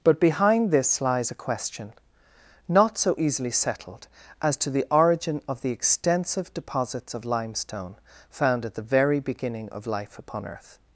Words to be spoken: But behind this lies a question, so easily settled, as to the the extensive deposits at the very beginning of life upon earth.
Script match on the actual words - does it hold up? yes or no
no